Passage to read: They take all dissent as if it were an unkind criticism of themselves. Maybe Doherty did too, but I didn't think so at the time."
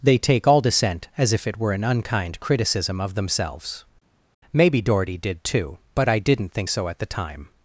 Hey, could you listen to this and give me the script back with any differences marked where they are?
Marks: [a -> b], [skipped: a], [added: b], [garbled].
They take all dissent as if it were an unkind criticism of themselves. Maybe Doherty did too, but I didn't think so at the time."